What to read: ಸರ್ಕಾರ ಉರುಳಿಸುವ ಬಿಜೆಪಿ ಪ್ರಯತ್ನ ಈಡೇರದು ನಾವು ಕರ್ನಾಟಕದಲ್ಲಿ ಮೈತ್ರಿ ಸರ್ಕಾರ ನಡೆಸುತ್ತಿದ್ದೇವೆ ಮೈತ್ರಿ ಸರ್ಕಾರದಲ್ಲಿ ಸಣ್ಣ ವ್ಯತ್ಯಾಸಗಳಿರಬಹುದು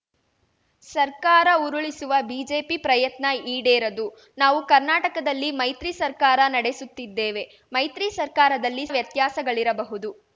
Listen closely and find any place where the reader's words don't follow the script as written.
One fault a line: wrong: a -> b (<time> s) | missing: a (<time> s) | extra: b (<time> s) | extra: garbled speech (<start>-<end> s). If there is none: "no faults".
missing: ಸಣ್ಣ (8.9 s)